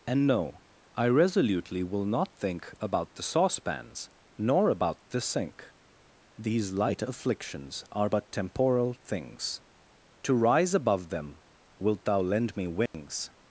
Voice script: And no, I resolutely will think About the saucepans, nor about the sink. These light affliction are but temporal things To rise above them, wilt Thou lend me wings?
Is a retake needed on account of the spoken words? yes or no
yes